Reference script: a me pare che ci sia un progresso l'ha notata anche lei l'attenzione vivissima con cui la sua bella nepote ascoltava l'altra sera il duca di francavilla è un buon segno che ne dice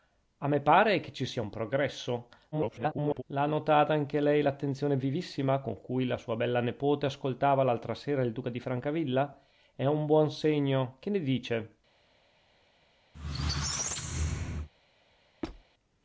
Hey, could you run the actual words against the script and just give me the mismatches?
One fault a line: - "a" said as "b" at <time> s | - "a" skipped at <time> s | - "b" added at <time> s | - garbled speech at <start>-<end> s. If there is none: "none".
- garbled speech at 2.5-3.2 s